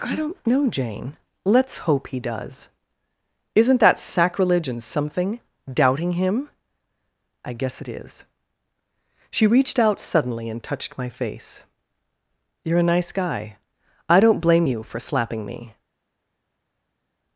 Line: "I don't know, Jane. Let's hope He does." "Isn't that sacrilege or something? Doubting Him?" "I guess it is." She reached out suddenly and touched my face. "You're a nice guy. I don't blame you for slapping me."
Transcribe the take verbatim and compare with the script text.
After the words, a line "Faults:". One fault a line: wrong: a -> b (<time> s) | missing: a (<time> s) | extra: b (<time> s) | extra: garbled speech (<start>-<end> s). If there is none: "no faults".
"I don't know, Jane. Let's hope He does." "Isn't that sacrilege and something? Doubting Him?" "I guess it is." She reached out suddenly and touched my face. "You're a nice guy. I don't blame you for slapping me."
Faults:
wrong: or -> and (4.7 s)